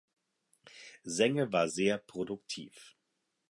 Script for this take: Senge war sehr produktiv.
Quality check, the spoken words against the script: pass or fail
pass